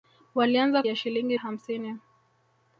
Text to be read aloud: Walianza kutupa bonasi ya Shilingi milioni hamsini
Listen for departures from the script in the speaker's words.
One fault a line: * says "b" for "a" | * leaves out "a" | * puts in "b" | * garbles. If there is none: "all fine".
* leaves out "kutupa bonasi"
* leaves out "milioni"